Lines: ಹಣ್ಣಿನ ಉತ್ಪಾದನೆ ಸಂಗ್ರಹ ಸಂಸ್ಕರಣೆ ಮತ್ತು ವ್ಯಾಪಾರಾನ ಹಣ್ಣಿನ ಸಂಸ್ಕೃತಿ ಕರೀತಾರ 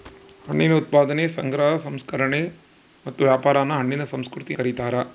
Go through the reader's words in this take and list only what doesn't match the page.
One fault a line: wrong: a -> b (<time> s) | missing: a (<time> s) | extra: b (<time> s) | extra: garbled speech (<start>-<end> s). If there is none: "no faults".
no faults